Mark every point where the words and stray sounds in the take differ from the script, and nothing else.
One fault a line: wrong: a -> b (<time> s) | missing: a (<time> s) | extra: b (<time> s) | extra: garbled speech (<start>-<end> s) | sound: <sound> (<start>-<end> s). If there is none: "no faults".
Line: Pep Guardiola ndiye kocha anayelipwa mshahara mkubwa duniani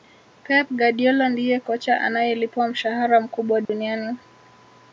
sound: dropout (3.6-3.7 s)